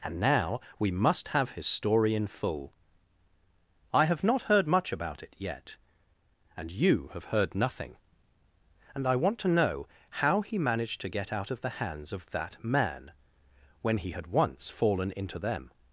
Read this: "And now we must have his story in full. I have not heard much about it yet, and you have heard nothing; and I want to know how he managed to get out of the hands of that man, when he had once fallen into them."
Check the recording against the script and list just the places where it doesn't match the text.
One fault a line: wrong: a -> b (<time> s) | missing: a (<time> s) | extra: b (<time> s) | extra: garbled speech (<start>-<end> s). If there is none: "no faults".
no faults